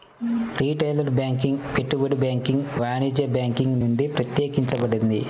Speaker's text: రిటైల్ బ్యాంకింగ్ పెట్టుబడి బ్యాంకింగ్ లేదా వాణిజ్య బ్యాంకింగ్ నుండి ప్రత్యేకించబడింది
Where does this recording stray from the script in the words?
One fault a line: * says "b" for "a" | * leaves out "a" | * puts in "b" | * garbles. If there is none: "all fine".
* leaves out "లేదా"